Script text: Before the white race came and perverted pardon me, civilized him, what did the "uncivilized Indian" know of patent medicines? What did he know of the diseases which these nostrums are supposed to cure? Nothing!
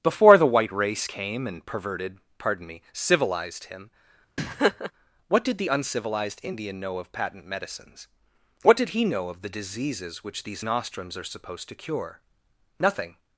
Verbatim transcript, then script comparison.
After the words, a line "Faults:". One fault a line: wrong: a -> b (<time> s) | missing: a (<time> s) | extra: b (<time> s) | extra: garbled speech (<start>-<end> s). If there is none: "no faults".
Before the white race came and perverted pardon me, civilized him, what did the "uncivilized Indian" know of patent medicines? What did he know of the diseases which these nostrums are supposed to cure? Nothing!
Faults:
no faults